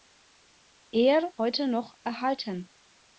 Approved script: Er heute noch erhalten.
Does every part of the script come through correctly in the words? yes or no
yes